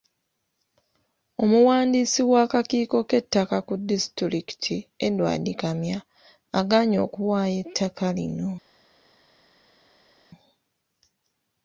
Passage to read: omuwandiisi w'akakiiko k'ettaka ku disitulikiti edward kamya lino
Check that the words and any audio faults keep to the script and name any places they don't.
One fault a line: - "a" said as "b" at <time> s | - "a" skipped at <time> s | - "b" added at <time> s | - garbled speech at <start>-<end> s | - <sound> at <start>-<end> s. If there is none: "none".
- "agaanye okuwaayo ettaka" added at 6.6 s